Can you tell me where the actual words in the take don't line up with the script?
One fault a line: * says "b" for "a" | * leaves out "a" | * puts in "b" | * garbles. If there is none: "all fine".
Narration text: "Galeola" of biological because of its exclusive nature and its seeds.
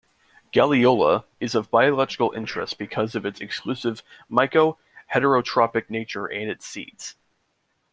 * puts in "is"
* puts in "interest"
* puts in "myco heterotrophic"